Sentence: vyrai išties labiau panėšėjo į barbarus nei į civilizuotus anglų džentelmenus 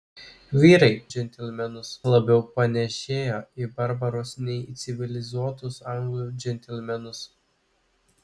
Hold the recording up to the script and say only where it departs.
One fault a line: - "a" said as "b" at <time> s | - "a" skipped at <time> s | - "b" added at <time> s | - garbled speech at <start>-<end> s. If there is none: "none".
- "išties" said as "džentelmenus" at 1.1 s